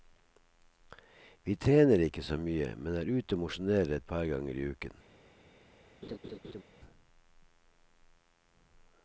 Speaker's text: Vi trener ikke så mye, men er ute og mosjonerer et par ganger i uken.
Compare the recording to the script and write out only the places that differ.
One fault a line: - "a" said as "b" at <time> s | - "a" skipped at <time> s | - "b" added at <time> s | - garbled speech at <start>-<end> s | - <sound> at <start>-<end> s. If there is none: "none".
- laugh at 6.0-6.6 s